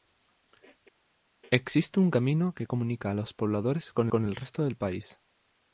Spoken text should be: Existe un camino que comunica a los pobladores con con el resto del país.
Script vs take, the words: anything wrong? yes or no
no